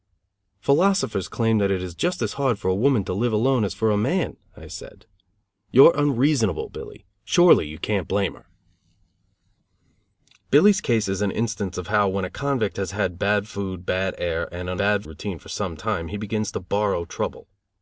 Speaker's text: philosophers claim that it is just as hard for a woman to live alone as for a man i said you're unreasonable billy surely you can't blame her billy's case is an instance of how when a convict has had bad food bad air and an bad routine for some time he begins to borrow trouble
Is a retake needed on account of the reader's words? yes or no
no